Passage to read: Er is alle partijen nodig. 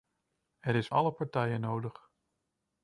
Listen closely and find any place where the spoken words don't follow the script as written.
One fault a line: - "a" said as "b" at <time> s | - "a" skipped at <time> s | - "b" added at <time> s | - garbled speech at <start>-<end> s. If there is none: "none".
none